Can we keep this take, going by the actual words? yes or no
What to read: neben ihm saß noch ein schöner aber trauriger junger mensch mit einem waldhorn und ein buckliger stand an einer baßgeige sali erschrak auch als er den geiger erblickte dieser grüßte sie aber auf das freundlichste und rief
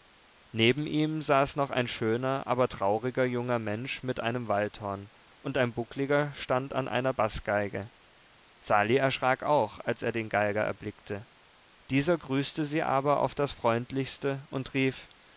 yes